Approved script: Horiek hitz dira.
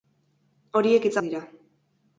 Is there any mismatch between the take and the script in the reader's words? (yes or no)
no